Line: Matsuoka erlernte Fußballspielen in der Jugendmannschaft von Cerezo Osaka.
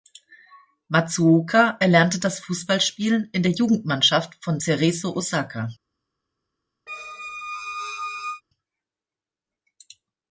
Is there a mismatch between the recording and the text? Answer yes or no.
yes